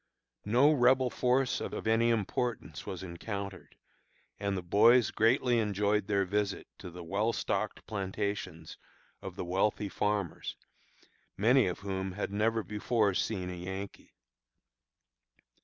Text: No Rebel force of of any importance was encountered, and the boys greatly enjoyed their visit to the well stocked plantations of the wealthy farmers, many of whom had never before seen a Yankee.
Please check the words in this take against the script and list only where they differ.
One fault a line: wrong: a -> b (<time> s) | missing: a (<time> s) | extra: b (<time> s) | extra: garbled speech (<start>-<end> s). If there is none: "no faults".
no faults